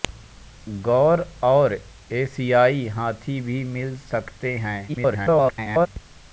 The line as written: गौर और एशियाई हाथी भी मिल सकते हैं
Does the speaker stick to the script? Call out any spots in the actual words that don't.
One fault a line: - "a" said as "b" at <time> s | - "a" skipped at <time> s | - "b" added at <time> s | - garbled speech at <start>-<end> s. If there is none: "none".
- garbled speech at 4.9-5.9 s